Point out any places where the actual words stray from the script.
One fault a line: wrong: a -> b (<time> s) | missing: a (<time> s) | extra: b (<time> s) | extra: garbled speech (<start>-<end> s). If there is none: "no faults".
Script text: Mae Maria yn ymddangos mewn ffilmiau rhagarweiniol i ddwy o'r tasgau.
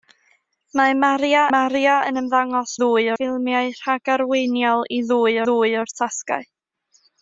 extra: Maria (1.5 s)
wrong: mewn -> ddwy (2.8 s)
extra: ddwy (5.5 s)